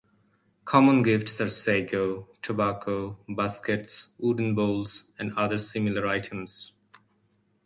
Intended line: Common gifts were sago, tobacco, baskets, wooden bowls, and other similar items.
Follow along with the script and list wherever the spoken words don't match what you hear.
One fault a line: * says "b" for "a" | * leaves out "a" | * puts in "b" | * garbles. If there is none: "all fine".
* says "are" for "were"